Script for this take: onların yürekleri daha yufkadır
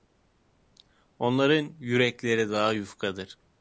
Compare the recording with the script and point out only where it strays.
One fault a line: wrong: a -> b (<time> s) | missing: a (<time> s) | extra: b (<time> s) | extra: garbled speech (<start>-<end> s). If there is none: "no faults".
no faults